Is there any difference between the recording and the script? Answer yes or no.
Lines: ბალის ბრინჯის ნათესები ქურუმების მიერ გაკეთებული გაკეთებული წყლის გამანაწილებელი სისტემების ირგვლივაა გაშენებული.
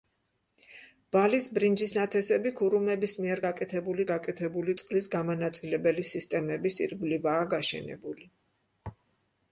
no